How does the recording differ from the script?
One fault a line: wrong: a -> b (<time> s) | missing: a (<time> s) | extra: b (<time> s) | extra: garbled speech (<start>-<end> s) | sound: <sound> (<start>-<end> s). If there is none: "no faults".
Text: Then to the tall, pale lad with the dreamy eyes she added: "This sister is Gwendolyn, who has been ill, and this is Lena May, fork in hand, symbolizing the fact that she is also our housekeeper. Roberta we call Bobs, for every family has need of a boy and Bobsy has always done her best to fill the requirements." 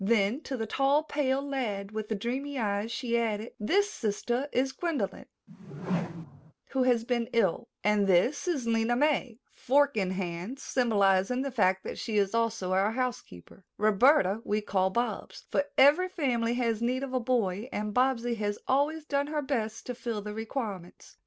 sound: whoosh (5.5-6.5 s)